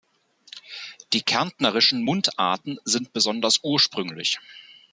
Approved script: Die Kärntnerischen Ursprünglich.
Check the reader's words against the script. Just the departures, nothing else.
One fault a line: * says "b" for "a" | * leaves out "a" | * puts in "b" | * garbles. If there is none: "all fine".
* puts in "Mundarten sind besonders"